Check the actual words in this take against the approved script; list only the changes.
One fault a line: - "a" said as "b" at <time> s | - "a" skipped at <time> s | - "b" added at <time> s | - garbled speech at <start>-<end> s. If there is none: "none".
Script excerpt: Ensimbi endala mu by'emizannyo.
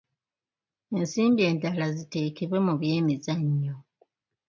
- "ziteekebwe" added at 2.0 s